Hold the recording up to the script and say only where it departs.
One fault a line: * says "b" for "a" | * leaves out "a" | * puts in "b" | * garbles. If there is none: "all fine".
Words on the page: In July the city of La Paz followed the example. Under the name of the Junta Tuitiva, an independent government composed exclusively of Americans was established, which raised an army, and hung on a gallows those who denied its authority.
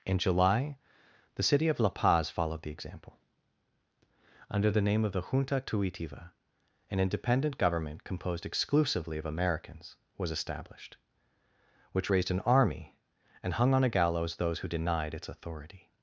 all fine